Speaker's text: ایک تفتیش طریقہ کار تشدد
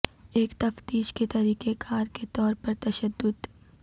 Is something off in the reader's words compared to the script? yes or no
yes